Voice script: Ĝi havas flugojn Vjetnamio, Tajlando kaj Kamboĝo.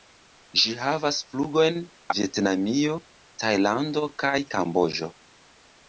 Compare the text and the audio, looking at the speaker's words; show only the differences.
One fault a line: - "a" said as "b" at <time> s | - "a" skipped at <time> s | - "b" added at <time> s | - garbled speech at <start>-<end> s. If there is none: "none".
none